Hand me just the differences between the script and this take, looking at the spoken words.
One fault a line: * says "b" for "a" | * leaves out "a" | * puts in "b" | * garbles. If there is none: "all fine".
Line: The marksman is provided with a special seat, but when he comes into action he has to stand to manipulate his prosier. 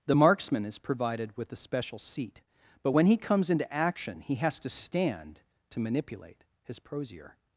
all fine